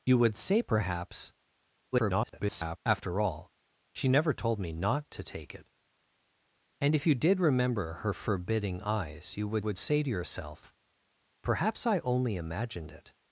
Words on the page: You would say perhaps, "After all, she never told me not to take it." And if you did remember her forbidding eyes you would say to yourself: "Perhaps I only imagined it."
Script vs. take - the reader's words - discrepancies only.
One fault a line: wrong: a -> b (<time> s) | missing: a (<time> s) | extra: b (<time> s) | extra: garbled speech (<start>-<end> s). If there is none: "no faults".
extra: garbled speech (1.9-2.8 s)
extra: would (9.6 s)